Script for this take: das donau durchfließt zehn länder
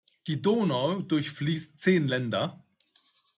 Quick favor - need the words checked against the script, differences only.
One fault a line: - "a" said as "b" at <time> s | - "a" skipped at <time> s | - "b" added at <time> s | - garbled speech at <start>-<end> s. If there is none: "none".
- "das" said as "die" at 0.2 s